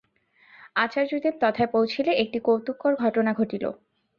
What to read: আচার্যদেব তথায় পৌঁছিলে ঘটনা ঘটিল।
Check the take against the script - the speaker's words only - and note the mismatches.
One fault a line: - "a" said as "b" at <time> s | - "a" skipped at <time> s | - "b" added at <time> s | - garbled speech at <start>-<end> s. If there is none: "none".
- "একটি কৌতুককর" added at 2.2 s